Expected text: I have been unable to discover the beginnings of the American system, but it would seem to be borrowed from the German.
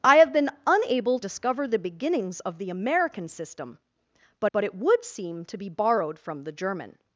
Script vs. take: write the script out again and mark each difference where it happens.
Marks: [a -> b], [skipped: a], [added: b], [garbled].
I have been unable [skipped: to] discover the beginnings of the American system, but [added: but] it would seem to be borrowed from the German.